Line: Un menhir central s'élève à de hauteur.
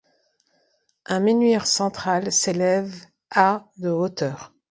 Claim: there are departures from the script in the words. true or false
false